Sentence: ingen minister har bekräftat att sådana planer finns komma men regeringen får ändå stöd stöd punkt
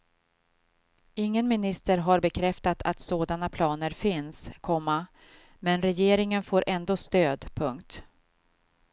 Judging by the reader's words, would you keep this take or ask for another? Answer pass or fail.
fail